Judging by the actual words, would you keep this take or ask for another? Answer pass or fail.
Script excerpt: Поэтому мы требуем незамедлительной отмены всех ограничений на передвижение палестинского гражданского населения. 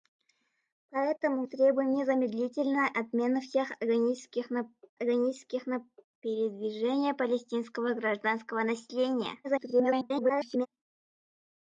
fail